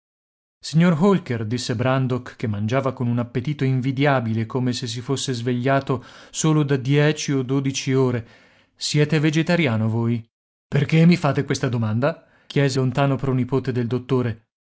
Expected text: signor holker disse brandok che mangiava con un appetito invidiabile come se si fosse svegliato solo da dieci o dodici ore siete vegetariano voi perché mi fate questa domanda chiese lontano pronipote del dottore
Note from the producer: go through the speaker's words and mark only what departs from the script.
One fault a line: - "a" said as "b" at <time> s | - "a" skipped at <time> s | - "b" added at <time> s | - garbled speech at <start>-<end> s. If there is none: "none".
none